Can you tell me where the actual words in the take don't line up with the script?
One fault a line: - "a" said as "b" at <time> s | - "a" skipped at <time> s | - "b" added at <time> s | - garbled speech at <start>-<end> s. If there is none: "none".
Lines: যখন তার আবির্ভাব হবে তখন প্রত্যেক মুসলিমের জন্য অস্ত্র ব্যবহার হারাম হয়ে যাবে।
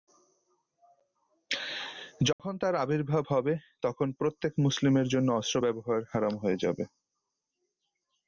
none